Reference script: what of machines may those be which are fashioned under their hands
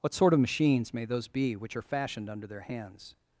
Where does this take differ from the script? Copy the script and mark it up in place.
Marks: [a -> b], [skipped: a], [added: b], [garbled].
what [added: sort] of machines may those be which are fashioned under their hands